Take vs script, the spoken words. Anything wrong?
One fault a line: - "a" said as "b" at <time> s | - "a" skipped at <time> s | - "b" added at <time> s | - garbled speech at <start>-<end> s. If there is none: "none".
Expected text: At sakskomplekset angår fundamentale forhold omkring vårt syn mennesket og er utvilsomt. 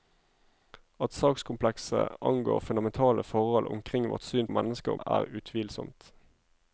none